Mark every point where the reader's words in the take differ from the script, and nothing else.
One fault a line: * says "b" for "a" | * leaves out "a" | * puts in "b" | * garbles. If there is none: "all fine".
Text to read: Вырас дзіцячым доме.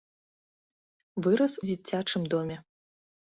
all fine